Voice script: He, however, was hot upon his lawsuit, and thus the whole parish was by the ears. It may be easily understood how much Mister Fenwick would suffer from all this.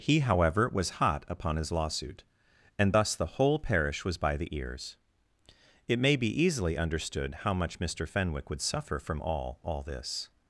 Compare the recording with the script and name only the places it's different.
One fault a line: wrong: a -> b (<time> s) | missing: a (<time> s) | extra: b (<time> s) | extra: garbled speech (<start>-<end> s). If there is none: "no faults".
extra: all (9.6 s)